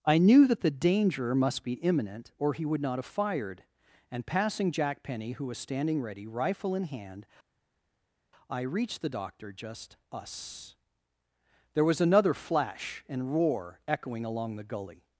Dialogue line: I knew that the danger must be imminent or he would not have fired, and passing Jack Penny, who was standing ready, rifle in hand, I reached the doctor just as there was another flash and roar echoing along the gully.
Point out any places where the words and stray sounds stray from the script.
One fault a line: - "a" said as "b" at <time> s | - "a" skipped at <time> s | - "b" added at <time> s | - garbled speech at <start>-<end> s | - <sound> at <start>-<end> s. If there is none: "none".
- "as" said as "us" at 10.1 s